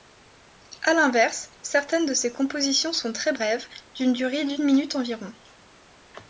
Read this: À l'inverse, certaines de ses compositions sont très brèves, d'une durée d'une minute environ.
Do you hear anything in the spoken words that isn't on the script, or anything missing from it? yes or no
no